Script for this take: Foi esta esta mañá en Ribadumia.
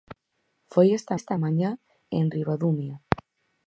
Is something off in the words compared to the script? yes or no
no